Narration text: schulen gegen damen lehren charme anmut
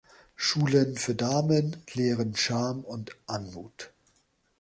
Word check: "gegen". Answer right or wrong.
wrong